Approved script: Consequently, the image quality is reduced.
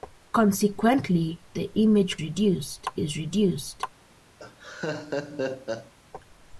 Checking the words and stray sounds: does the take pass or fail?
fail